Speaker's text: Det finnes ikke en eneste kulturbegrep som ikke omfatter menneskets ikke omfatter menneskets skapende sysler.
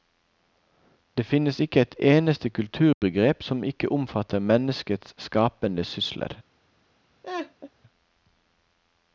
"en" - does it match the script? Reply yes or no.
no